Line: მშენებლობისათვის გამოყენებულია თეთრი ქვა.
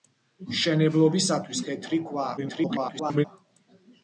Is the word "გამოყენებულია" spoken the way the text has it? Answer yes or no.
no